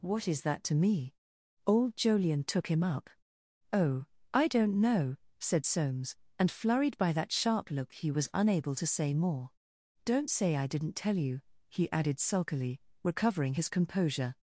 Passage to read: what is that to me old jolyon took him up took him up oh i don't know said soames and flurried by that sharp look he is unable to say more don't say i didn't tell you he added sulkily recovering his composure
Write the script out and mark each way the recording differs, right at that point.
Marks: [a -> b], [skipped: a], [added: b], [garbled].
what is that to me old jolyon took him up [skipped: took him up] oh i don't know said soames and flurried by that sharp look he [is -> was] unable to say more don't say i didn't tell you he added sulkily recovering his composure